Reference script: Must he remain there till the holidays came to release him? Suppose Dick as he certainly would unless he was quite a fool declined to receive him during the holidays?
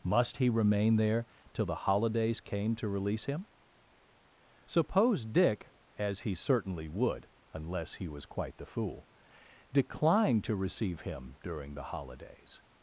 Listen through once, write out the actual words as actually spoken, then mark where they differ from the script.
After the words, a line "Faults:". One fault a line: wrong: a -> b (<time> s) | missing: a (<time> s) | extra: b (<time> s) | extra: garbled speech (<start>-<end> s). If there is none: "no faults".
Must he remain there till the holidays came to release him? Suppose Dick as he certainly would unless he was quite the fool declined to receive him during the holidays?
Faults:
wrong: a -> the (8.6 s)